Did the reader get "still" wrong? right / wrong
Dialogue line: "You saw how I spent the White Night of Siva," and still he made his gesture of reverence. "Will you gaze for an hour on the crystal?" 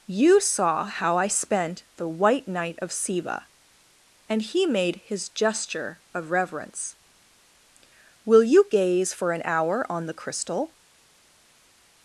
wrong